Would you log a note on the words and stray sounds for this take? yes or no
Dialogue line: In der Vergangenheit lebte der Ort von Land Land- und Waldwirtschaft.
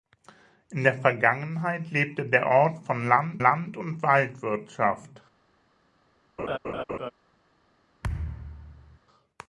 yes